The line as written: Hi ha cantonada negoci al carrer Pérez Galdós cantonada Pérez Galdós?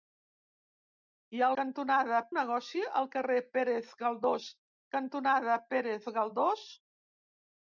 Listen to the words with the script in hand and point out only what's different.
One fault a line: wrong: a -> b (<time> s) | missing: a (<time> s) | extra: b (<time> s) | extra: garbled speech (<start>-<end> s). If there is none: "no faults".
no faults